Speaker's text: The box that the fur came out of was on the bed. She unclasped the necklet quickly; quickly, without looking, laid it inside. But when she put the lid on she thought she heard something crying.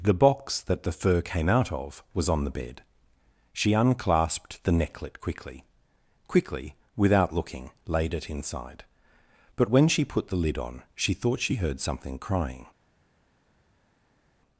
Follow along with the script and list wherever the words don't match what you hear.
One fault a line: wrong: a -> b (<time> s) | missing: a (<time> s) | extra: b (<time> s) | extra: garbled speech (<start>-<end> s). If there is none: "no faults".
no faults